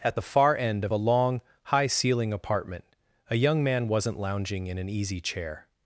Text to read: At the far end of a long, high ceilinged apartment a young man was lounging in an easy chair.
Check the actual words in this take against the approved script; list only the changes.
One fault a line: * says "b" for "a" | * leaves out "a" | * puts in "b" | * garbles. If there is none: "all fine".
* says "ceiling" for "ceilinged"
* says "wasn't" for "was"